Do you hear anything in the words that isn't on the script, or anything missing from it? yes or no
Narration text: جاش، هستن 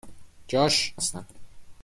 no